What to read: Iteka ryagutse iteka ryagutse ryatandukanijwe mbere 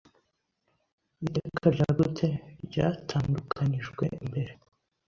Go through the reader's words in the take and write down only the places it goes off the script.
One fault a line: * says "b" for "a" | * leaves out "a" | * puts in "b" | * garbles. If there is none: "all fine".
* leaves out "iteka ryagutse"